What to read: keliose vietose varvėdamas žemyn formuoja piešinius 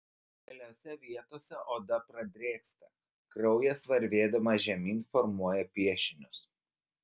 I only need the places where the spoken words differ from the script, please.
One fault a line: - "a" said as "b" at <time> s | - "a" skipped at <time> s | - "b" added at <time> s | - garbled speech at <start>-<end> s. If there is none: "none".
- "oda pradrėksta kraujas" added at 1.8 s